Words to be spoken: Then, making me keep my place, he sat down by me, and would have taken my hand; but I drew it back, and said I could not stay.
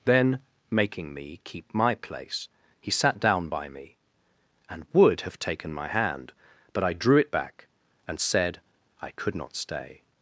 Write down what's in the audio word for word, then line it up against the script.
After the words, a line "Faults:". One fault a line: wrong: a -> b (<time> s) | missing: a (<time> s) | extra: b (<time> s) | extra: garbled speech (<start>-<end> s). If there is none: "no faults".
Then, making me keep my place, he sat down by me, and would have taken my hand; but I drew it back, and said I could not stay.
Faults:
no faults